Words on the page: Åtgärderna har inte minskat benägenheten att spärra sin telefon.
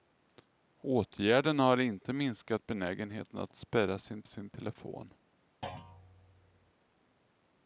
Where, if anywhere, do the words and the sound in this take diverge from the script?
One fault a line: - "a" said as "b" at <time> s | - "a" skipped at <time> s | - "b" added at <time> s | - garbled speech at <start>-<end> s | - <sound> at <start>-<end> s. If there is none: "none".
- "sin" added at 4.2 s
- thud at 5.6-6.7 s